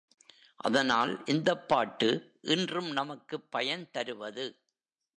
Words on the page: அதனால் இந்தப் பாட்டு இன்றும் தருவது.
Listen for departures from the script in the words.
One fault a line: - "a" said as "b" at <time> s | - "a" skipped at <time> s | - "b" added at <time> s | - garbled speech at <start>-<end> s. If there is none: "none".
- "நமக்குப் பயன்" added at 2.9 s